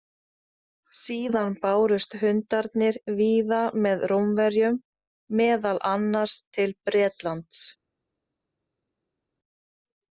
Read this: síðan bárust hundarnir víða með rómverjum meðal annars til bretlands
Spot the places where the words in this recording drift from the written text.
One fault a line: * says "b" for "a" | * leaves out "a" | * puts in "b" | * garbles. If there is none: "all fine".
all fine